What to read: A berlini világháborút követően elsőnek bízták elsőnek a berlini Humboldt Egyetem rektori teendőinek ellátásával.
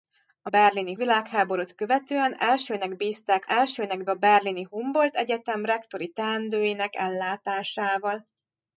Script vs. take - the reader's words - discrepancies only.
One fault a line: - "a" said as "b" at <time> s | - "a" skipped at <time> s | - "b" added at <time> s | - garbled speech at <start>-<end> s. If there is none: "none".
none